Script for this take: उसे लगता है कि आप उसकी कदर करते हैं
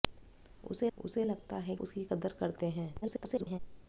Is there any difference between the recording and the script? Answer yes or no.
yes